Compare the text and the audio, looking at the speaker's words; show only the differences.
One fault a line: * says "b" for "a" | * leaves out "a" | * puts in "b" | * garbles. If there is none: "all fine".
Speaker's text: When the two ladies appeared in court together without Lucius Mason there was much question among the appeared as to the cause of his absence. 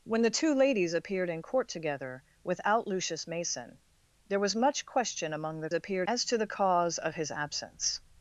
all fine